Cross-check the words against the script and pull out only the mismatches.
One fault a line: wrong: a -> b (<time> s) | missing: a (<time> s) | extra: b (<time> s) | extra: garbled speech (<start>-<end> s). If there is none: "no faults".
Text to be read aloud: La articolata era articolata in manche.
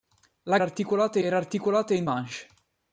no faults